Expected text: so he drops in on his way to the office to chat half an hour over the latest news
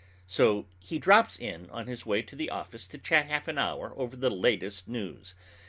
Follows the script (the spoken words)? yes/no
yes